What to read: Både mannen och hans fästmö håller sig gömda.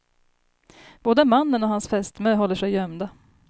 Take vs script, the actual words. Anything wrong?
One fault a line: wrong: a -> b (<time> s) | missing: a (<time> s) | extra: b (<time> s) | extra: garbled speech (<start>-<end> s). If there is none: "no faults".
no faults